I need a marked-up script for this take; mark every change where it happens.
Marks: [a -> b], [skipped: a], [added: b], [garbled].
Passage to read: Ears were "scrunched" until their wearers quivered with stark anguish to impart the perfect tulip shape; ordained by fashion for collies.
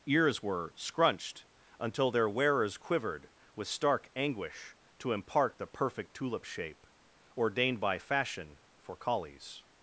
Ears were "scrunched" until their wearers quivered with stark anguish to impart the perfect tulip shape; ordained by fashion for collies.